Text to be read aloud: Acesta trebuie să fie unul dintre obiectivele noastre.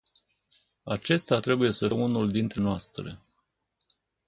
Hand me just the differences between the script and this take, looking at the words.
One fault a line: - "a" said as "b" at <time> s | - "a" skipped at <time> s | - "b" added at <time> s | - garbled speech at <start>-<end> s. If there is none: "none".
- "fie" skipped at 1.9 s
- "obiectivele" skipped at 2.6 s